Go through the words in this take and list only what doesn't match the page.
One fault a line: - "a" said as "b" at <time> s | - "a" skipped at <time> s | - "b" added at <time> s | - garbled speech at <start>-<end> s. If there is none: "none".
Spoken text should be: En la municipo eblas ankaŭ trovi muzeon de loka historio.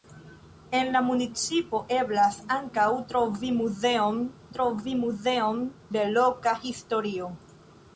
- "trovi muzeon" added at 4.6 s